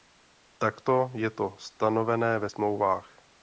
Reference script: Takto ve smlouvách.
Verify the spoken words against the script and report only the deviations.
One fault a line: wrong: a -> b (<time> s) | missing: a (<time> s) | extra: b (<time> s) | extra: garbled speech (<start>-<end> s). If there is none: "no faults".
extra: je to stanovené (1.1 s)